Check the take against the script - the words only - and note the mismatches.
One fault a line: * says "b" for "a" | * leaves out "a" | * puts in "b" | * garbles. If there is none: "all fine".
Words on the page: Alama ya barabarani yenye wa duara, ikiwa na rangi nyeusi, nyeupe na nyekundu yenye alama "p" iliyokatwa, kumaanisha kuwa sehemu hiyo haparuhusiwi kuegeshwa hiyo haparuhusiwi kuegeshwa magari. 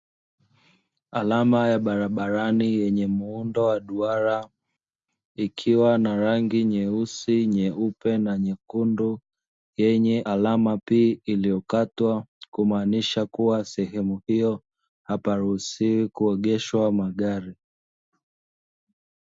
* puts in "muundo"
* leaves out "hiyo haparuhusiwi kuegeshwa"